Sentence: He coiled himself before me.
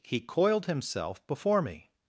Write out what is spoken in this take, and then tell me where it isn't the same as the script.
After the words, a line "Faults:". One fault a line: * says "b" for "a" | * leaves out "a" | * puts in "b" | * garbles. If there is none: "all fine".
He coiled himself before me.
Faults:
all fine